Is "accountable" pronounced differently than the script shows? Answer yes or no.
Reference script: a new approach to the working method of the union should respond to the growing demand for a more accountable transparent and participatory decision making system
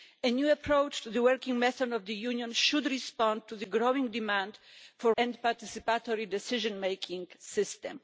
yes